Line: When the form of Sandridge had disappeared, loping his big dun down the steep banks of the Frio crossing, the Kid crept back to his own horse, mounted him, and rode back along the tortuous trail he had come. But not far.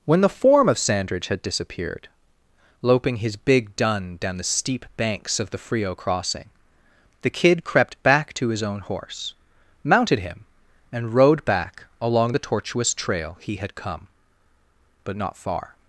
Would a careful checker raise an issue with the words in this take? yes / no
no